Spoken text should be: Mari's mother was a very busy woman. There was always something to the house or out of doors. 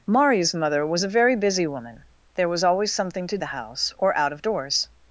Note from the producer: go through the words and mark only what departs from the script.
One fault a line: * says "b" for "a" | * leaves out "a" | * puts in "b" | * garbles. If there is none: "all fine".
all fine